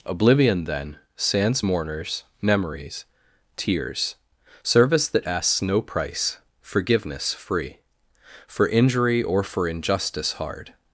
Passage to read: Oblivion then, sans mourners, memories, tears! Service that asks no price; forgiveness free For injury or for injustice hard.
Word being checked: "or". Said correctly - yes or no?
yes